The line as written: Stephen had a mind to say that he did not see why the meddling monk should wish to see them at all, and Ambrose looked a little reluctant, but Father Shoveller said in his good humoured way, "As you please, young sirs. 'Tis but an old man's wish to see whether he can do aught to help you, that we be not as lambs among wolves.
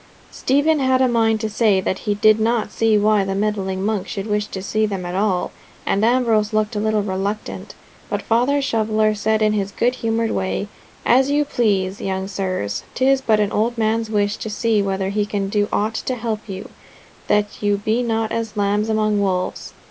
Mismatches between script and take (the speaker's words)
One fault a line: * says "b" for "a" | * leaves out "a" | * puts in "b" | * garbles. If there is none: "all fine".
* says "you" for "we"